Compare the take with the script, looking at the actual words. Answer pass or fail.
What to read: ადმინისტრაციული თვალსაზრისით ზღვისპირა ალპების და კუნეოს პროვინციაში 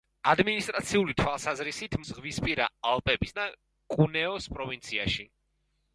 pass